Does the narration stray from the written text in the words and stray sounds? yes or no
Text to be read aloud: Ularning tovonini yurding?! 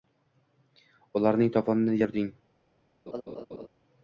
yes